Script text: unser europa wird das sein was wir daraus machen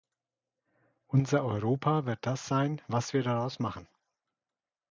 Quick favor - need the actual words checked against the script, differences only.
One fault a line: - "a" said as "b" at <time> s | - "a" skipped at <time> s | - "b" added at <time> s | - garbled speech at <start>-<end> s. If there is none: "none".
none